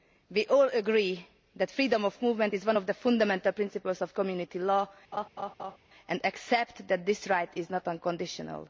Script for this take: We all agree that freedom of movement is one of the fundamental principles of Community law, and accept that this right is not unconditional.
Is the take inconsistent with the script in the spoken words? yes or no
no